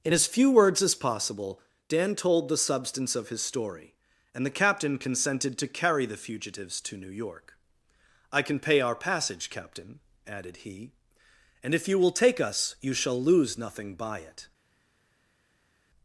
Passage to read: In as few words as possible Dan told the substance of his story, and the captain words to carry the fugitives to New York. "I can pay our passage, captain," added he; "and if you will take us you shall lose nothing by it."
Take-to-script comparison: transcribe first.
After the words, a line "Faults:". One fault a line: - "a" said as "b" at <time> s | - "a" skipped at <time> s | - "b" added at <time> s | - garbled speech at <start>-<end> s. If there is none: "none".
In as few words as possible Dan told the substance of his story, and the captain consented to carry the fugitives to New York. "I can pay our passage, captain," added he; "and if you will take us you shall lose nothing by it."
Faults:
- "words" said as "consented" at 5.0 s